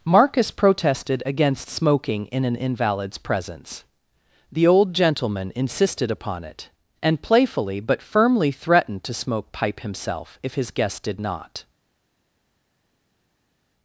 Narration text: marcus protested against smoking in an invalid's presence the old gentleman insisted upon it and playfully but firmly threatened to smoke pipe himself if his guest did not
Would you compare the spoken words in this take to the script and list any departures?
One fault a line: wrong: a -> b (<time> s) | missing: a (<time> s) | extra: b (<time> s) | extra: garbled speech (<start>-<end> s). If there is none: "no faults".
no faults